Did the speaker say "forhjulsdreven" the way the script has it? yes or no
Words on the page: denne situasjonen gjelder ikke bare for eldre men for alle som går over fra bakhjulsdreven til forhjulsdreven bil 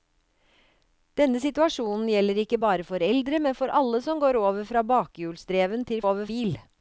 no